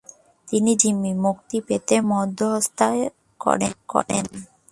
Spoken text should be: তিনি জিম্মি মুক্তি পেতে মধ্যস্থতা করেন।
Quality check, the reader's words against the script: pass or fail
pass